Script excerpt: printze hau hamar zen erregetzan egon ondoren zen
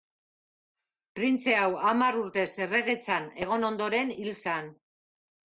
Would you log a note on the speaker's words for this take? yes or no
yes